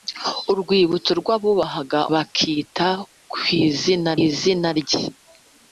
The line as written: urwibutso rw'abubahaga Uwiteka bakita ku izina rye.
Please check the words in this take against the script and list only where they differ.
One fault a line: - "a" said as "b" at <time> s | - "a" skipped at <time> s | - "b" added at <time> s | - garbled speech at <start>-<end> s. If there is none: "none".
- "Uwiteka" skipped at 2.0 s
- "izina" added at 4.2 s